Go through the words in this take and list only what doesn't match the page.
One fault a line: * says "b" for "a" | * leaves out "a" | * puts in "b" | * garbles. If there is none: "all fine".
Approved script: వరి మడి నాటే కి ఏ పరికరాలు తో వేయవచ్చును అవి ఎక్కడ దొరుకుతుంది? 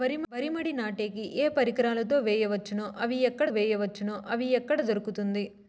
* puts in "వేయవచ్చును అవి ఎక్కడ"